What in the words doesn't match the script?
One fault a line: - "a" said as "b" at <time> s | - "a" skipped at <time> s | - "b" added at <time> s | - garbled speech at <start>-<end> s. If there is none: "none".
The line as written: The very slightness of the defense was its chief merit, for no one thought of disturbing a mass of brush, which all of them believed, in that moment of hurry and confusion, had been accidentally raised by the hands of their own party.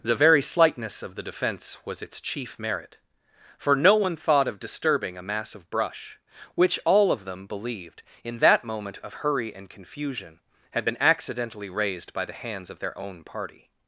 none